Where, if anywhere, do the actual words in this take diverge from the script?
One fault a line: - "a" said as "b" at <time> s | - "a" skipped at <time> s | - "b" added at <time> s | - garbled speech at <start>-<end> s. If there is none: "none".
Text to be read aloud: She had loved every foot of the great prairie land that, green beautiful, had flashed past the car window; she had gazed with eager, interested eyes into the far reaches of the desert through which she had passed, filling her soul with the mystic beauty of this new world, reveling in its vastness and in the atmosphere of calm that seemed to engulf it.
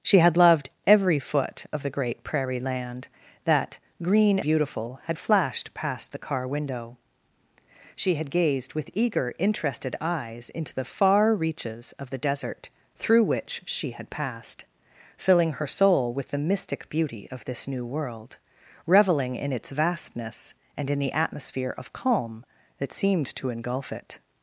none